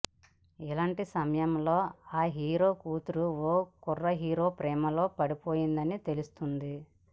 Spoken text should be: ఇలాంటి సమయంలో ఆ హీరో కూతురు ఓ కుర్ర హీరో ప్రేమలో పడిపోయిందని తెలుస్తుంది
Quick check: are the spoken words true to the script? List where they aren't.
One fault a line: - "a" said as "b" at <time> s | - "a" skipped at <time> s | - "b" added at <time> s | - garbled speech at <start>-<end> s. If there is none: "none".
none